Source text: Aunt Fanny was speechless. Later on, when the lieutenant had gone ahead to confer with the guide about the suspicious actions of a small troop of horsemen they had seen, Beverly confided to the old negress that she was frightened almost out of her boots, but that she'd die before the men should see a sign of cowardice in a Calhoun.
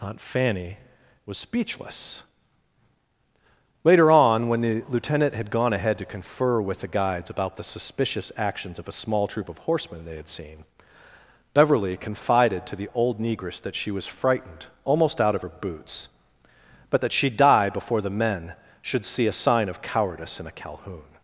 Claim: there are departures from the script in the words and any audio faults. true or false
true